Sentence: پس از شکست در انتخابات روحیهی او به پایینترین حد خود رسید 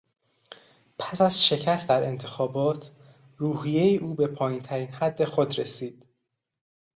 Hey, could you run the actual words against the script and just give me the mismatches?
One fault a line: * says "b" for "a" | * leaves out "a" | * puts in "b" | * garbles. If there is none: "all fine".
all fine